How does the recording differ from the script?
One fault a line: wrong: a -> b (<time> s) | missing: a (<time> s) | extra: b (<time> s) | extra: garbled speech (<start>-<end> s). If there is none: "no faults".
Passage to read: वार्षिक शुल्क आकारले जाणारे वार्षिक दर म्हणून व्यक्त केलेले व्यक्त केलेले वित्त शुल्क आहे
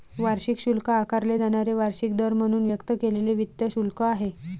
missing: व्यक्त केलेले (3.3 s)